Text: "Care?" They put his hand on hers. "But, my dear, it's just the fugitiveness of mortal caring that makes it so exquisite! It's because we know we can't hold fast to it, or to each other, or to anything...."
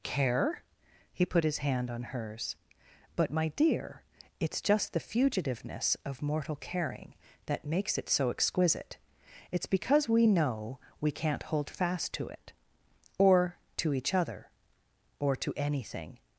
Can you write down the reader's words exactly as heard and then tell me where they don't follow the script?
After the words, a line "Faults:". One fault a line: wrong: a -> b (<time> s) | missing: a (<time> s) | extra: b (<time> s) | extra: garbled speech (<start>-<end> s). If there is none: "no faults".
"Care?" He put his hand on hers. "But, my dear, it's just the fugitiveness of mortal caring that makes it so exquisite! It's because we know we can't hold fast to it, or to each other, or to anything...."
Faults:
wrong: They -> He (1.1 s)